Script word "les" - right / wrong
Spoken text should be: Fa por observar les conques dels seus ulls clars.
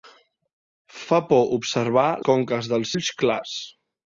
wrong